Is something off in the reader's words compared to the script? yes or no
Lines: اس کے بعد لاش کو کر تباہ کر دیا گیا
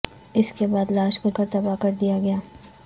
no